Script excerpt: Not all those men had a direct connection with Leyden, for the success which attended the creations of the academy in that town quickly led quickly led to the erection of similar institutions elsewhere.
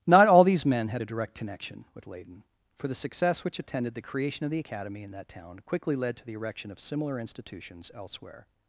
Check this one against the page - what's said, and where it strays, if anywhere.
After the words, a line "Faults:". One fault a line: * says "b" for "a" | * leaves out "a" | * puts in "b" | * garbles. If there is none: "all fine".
Not all these men had a direct connection with Leyden, for the success which attended the creation of the academy in that town quickly led to the erection of similar institutions elsewhere.
Faults:
* says "these" for "those"
* says "creation" for "creations"
* leaves out "quickly led"